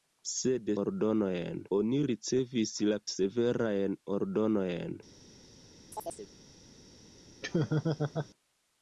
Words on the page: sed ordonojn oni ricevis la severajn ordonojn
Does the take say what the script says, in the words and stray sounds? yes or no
no